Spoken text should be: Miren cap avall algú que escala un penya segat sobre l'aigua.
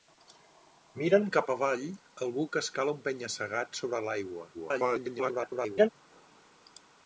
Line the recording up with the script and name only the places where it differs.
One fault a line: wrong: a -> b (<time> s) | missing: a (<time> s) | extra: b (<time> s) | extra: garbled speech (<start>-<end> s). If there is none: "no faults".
extra: garbled speech (4.5-5.9 s)